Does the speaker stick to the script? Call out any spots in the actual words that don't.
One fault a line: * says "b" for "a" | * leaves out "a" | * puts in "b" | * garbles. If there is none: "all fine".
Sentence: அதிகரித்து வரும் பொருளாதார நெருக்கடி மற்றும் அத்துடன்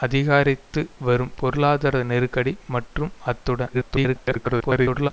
* garbles